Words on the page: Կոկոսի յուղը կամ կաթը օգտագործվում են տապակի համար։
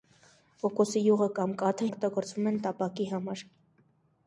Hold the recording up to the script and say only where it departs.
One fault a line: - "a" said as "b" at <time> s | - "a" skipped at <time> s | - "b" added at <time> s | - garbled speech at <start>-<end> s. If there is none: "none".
none